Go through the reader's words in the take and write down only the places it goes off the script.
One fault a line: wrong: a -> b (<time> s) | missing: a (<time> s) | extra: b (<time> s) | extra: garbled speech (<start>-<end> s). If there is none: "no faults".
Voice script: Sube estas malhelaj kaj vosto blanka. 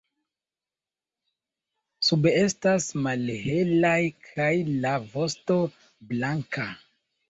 extra: la (4.8 s)